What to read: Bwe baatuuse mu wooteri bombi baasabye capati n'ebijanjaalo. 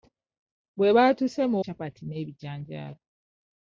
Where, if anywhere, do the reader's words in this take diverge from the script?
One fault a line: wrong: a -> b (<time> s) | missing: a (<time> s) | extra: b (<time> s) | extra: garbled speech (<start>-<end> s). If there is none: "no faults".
missing: wooteri bombi baasabye (1.6 s)